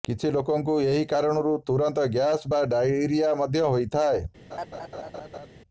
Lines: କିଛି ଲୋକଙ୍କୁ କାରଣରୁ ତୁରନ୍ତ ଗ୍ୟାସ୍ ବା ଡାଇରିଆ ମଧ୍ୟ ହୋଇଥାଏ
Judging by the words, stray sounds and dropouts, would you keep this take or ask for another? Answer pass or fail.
fail